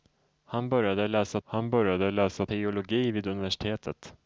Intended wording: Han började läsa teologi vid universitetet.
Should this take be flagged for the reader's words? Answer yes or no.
yes